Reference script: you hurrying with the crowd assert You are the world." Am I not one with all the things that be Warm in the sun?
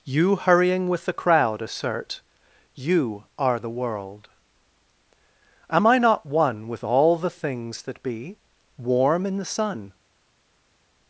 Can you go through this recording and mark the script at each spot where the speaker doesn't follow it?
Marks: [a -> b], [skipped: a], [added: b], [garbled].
you hurrying with the crowd assert You are the world." Am I not one with all the things that be Warm in the sun?